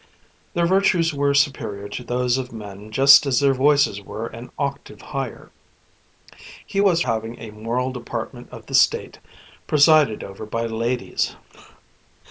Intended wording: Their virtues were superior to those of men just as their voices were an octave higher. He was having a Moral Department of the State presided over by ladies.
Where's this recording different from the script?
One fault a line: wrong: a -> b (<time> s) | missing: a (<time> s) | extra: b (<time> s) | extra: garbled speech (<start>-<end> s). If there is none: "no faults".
no faults